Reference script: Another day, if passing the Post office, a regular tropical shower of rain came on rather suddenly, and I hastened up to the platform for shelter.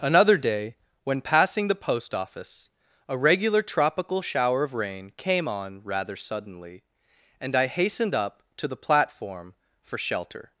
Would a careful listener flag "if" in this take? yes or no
yes